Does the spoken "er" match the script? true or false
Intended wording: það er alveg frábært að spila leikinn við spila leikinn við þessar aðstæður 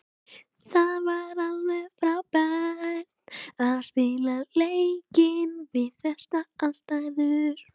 false